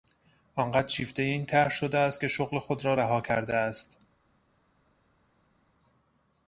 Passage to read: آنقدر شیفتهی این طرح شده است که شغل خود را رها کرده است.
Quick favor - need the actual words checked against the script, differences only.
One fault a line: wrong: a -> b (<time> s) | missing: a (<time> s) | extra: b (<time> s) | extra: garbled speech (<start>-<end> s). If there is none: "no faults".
no faults